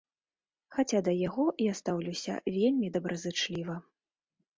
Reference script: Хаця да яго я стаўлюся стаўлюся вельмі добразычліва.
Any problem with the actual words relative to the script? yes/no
yes